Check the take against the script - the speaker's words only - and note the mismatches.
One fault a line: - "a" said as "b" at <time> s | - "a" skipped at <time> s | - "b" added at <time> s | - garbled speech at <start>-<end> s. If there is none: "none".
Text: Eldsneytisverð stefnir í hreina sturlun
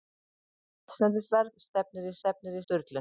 - "hreina" said as "stefnir" at 2.2 s